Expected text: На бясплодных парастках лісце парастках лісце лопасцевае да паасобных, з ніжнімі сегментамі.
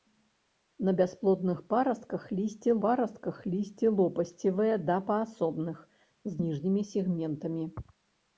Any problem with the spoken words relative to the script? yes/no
no